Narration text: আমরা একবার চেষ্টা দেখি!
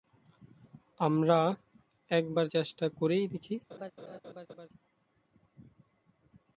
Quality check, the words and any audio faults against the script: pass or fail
fail